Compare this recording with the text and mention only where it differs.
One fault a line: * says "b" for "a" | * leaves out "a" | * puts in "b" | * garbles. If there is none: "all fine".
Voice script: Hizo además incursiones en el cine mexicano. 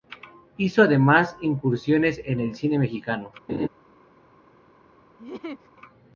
all fine